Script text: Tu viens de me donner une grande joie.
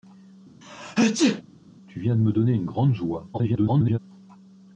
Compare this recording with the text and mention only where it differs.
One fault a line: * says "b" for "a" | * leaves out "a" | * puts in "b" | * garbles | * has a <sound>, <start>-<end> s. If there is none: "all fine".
* has a sneeze, 0.6-1.4 s
* garbles